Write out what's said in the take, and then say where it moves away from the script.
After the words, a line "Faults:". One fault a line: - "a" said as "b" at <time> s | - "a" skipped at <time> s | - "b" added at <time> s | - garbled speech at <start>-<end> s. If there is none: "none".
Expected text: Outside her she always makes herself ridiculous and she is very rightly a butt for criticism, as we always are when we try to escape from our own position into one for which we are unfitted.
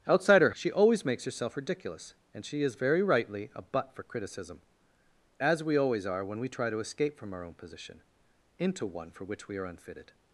Outside her she always makes herself ridiculous and she is very rightly a butt for criticism, as we always are when we try to escape from our own position into one for which we are unfitted.
Faults:
none